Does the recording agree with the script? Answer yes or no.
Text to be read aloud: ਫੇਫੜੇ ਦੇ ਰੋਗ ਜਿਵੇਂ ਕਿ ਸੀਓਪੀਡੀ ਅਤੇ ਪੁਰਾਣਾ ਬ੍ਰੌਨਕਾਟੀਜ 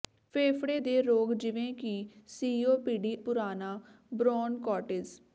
no